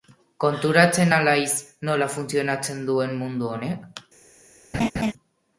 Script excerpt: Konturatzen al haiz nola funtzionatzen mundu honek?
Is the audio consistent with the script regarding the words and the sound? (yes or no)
no